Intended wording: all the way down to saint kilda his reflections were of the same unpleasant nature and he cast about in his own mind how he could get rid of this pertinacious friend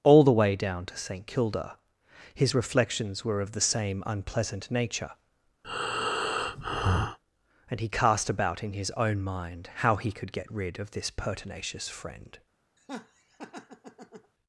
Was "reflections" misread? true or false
false